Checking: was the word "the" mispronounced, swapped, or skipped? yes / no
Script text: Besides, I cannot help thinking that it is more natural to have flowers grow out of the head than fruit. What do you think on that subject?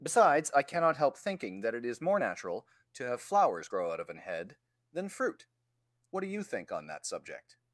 yes